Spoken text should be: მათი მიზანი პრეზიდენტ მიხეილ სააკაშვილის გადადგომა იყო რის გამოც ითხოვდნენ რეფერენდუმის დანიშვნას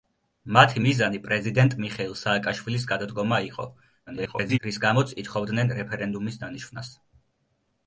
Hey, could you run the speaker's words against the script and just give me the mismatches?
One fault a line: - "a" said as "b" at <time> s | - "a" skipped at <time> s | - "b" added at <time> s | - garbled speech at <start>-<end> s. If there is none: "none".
- garbled speech at 4.1-4.6 s